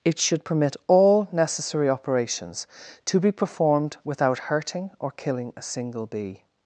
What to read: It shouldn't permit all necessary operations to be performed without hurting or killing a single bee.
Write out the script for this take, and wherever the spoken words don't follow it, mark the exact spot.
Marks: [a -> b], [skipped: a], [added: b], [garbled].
It [shouldn't -> should] permit all necessary operations to be performed without hurting or killing a single bee.